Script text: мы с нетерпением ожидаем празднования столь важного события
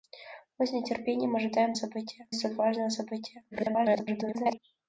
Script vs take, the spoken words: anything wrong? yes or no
yes